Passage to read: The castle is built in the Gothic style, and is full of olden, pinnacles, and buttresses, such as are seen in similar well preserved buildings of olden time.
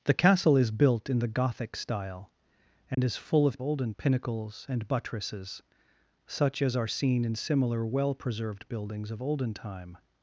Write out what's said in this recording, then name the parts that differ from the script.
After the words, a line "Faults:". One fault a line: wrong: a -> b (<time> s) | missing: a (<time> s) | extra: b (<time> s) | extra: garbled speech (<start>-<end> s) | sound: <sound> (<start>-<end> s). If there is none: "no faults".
The castle is built in the Gothic style, and is full of olden, pinnacles, and buttresses, such as are seen in similar well preserved buildings of olden time.
Faults:
sound: dropout (2.9-3.0 s)